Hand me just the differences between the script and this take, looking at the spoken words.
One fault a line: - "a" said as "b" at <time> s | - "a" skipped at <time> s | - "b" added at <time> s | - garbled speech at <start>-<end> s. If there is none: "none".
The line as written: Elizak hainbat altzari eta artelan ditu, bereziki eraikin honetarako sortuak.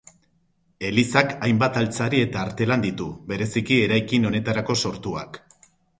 none